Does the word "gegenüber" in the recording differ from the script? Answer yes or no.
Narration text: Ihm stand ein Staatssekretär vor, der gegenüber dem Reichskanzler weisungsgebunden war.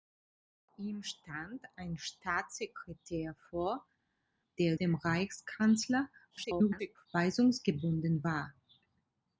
yes